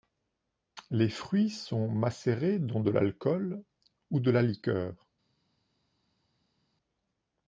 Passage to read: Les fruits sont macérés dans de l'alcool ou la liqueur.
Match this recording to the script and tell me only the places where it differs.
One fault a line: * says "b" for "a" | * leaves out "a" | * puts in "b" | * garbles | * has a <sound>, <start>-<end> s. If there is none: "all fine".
* puts in "de"